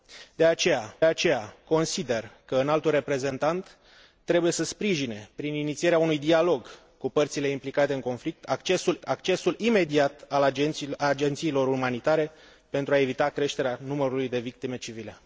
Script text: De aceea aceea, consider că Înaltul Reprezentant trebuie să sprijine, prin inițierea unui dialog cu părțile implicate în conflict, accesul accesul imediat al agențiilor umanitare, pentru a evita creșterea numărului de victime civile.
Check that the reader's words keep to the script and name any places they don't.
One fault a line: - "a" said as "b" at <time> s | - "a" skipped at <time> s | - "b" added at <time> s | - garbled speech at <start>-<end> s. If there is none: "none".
none